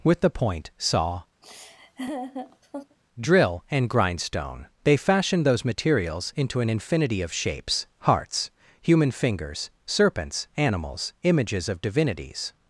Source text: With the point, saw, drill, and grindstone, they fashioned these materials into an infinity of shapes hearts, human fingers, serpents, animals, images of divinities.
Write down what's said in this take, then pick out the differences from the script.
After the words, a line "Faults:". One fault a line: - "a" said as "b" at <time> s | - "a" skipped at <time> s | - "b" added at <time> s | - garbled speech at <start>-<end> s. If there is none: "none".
With the point, saw, drill, and grindstone, they fashioned those materials into an infinity of shapes hearts, human fingers, serpents, animals, images of divinities.
Faults:
- "these" said as "those" at 5.5 s